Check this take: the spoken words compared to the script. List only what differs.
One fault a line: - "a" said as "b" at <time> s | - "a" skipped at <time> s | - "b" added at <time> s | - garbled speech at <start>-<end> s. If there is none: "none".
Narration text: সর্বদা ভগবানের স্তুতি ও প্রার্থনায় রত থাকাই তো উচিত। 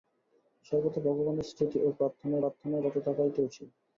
- "প্রার্থনায়" added at 2.4 s